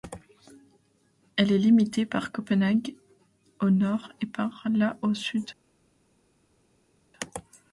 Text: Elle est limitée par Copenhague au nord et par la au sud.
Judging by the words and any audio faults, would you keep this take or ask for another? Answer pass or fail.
pass